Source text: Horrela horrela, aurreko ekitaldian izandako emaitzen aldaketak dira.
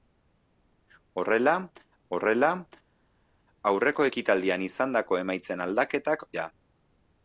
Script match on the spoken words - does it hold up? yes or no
yes